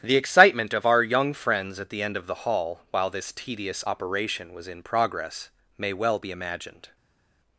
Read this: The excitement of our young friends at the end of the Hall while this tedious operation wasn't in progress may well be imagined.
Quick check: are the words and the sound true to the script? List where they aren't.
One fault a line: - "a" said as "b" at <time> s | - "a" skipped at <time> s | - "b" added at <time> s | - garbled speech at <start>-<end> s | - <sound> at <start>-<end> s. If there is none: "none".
- "wasn't" said as "was" at 4.5 s